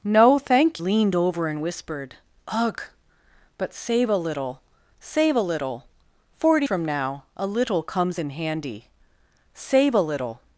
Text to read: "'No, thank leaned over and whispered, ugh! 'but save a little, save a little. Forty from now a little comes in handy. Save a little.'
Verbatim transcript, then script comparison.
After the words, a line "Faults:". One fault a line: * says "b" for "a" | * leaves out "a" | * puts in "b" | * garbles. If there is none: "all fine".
"'No, thank leaned over and whispered, ugh! 'but save a little, save a little. Forty from now a little comes in handy. Save a little.'
Faults:
all fine